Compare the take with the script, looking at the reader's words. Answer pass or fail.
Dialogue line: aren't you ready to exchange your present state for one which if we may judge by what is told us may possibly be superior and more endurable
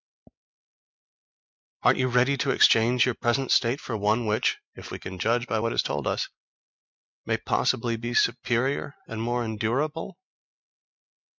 fail